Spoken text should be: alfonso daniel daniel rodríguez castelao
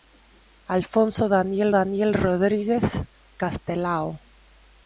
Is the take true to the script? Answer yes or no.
yes